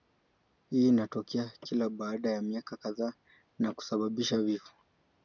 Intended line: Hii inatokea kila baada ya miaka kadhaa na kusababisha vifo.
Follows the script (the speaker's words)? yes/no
yes